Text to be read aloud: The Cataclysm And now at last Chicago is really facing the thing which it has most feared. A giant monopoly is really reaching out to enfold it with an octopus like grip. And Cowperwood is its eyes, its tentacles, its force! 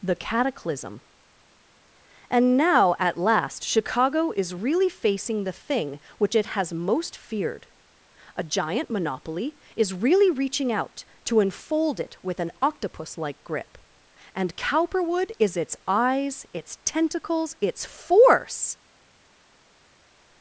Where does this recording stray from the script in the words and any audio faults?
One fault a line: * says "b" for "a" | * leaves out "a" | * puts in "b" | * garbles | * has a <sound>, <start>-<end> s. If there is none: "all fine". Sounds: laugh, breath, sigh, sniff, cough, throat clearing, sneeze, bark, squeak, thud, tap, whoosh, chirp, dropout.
all fine